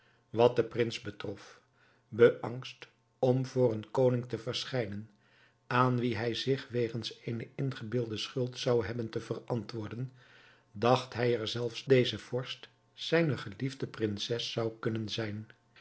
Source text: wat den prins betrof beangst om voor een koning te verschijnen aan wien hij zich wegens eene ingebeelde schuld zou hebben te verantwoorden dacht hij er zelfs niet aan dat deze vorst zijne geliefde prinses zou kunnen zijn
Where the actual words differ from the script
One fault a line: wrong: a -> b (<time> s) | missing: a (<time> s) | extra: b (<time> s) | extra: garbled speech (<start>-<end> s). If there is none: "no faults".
missing: niet aan dat (11.9 s)